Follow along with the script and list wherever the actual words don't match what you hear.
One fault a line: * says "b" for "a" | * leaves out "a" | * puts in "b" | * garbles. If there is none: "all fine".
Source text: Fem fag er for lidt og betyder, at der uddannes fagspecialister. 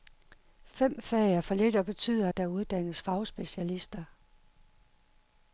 all fine